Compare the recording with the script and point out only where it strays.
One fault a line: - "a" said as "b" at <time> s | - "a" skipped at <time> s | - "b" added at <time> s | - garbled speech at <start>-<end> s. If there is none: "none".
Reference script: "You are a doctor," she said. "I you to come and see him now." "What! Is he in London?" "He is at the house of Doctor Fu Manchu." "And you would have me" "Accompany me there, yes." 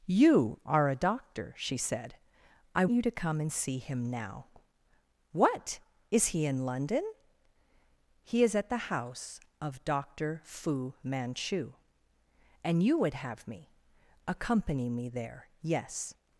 none